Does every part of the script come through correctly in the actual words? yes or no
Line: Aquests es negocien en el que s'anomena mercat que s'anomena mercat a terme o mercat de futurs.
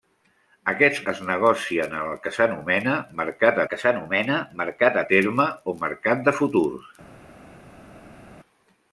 yes